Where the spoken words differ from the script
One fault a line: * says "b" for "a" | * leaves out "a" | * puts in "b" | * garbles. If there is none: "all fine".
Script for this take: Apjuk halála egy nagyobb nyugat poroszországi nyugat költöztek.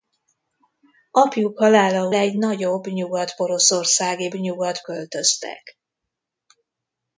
all fine